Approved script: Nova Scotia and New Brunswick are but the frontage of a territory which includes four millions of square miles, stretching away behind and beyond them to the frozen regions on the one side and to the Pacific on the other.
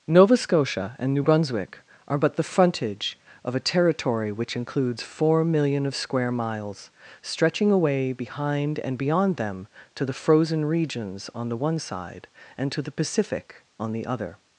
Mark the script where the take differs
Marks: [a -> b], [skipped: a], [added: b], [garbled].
Nova Scotia and New Brunswick are but the frontage of a territory which includes four [millions -> million] of square miles, stretching away behind and beyond them to the frozen regions on the one side and to the Pacific on the other.